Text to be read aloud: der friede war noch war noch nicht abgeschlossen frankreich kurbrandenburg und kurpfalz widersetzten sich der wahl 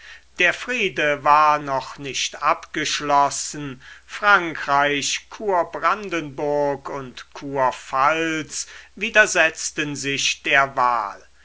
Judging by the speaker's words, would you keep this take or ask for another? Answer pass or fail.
fail